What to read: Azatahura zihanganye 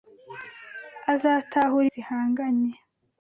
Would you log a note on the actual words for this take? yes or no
no